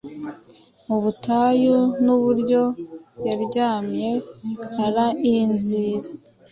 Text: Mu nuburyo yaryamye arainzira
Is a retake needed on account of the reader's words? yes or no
yes